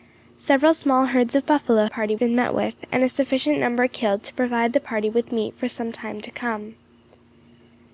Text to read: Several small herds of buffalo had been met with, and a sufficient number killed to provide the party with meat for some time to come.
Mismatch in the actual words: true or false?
true